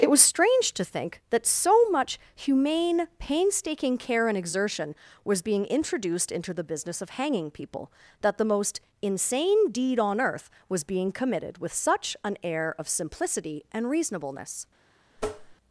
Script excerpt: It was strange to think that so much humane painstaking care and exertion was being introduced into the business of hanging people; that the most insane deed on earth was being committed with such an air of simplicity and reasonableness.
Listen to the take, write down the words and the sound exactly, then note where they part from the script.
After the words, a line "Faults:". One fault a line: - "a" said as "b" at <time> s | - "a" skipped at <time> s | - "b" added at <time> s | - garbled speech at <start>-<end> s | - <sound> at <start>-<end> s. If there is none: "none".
It was strange to think that so much humane painstaking care and exertion was being introduced into the business of hanging people; that the most insane deed on earth was being committed with such an air of simplicity and reasonableness.
Faults:
- tap at 15.2-15.6 s